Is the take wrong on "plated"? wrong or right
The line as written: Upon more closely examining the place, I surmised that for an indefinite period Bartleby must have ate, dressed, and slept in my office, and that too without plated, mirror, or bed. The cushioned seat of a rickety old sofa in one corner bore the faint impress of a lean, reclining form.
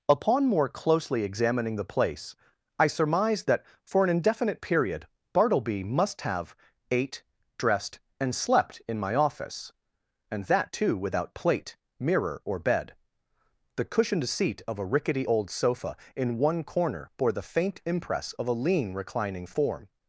wrong